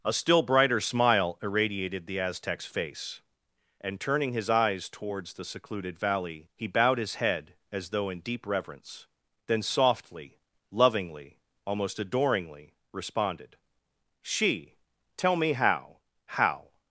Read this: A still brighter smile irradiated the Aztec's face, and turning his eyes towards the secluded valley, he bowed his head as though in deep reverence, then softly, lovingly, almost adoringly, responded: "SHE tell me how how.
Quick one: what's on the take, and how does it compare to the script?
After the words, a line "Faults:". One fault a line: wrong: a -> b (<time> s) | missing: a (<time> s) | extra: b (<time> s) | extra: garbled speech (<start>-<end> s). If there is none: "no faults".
A still brighter smile irradiated the Aztec's face, and turning his eyes towards the secluded valley, he bowed his head as though in deep reverence, then softly, lovingly, almost adoringly, responded: "SHE tell me how how.
Faults:
no faults